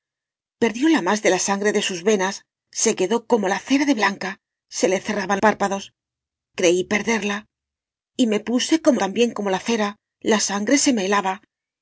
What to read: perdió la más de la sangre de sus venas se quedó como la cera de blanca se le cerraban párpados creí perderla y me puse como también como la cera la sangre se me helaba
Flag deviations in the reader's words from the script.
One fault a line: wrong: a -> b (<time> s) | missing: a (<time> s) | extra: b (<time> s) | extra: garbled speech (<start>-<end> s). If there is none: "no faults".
no faults